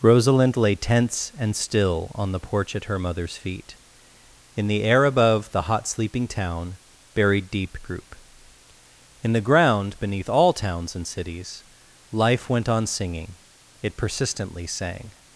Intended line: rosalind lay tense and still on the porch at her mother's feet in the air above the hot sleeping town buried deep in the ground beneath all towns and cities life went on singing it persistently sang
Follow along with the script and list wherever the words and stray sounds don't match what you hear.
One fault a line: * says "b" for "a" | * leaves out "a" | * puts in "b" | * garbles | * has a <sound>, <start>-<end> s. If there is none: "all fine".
* puts in "group"